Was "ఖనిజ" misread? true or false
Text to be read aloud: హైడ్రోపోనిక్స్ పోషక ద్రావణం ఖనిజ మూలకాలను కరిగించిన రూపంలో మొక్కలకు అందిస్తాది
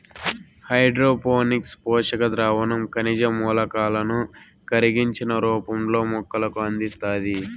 false